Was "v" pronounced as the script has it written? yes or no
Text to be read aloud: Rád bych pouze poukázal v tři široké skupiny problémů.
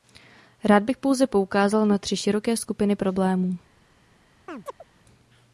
no